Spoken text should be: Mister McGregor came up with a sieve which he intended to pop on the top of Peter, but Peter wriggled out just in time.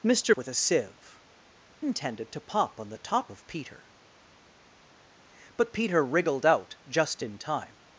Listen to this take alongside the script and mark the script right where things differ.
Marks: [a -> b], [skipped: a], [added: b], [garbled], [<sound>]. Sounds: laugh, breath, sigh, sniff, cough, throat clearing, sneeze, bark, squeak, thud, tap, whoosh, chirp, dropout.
Mister [skipped: McGregor came up] with a sieve [skipped: which he] intended to pop on the top of Peter, but Peter wriggled out just in time.